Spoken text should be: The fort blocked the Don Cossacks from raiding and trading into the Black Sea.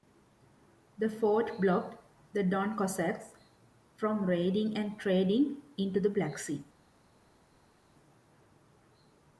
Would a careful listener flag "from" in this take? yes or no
no